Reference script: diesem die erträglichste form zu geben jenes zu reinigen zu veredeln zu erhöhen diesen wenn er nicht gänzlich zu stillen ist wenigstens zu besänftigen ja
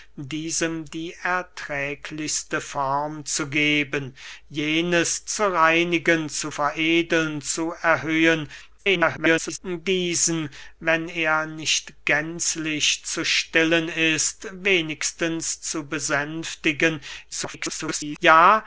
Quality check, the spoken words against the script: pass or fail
fail